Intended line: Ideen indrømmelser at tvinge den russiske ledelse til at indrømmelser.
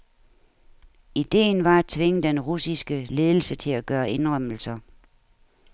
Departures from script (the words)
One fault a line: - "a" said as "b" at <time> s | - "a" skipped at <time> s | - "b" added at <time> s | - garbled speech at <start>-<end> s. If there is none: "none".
- "indrømmelser" said as "var" at 1.6 s
- "gøre" added at 3.9 s